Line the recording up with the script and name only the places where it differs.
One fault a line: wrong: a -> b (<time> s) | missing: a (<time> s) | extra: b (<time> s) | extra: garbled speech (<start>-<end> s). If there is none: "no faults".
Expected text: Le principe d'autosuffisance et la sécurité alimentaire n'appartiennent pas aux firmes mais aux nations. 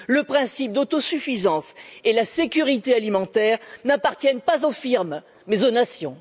no faults